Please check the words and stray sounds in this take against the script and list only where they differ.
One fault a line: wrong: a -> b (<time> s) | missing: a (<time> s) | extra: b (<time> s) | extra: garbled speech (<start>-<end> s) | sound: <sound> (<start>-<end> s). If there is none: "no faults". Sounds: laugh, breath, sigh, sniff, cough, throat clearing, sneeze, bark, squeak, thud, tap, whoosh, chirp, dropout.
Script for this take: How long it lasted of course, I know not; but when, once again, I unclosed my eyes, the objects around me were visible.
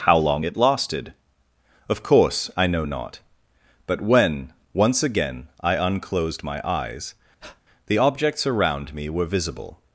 sound: breath (7.4-7.6 s)